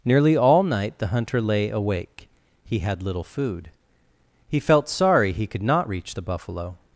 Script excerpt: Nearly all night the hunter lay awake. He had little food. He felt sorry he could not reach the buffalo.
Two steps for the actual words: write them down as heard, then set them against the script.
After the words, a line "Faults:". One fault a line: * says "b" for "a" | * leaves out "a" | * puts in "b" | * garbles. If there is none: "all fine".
Nearly all night the hunter lay awake. He had little food. He felt sorry he could not reach the buffalo.
Faults:
all fine